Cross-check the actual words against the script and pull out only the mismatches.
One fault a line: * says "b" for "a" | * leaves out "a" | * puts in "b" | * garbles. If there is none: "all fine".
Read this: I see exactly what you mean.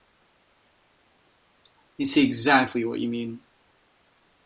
all fine